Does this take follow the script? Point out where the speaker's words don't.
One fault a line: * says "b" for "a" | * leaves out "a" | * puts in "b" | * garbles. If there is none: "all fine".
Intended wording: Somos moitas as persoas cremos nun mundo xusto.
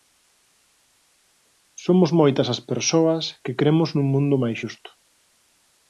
* puts in "que"
* puts in "máis"